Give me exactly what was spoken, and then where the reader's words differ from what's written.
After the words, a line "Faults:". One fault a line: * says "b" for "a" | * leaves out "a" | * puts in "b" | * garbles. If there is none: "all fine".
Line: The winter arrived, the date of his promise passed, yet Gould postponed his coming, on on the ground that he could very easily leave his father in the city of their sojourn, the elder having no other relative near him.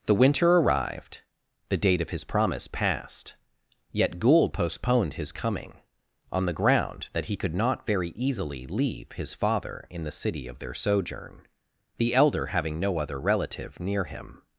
The winter arrived, the date of his promise passed, yet Gould postponed his coming, on the ground that he could not very easily leave his father in the city of their sojourn, the elder having no other relative near him.
Faults:
* leaves out "on"
* puts in "not"